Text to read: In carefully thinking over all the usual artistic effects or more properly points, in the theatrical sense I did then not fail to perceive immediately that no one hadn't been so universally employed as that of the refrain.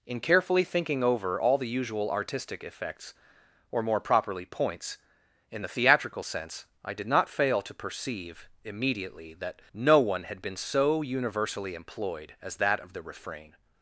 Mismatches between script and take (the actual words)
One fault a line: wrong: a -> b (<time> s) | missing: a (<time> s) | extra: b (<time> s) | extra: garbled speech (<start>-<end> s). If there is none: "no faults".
missing: then (7.1 s)
wrong: hadn't -> had (10.2 s)